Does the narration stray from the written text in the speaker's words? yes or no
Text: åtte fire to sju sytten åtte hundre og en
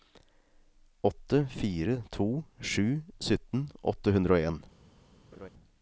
no